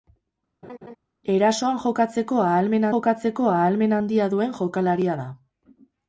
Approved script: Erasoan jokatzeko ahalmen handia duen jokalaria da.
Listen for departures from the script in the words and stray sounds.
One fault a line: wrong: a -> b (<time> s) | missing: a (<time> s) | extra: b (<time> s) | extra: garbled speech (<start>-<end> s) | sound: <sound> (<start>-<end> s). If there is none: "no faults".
sound: laugh (0.6-1.0 s)
extra: jokatzeko ahalmen (2.9 s)